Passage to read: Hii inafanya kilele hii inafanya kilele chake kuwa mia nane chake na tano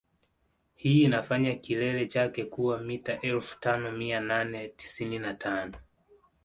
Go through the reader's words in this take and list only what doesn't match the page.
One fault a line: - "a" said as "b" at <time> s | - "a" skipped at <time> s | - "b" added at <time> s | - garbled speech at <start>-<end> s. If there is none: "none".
- "hii inafanya kilele chake kuwa" said as "chake kuwa mita elfu tano" at 2.0 s
- "chake" said as "tisini" at 4.7 s